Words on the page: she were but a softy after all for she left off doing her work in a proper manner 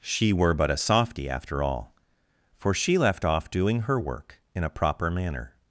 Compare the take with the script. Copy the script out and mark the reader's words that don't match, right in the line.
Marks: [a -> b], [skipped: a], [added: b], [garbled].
she were but a softy after all for she left off doing her work in a proper manner